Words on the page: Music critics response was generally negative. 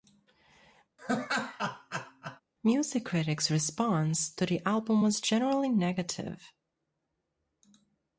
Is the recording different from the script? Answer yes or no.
yes